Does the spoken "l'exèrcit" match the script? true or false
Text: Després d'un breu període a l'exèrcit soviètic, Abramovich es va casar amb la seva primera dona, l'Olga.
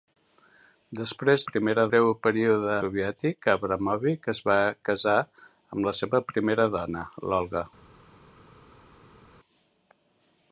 false